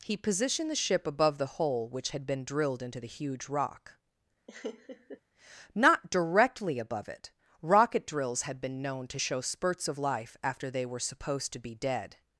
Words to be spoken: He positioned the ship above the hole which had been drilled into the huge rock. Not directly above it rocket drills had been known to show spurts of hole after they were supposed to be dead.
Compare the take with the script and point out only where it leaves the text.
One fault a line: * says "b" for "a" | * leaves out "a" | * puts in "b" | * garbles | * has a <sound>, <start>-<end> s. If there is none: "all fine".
* has a laugh, 4.5-5.2 s
* says "life" for "hole"